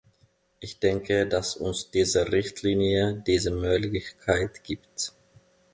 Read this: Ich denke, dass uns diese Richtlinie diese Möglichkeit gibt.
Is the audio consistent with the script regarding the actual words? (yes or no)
yes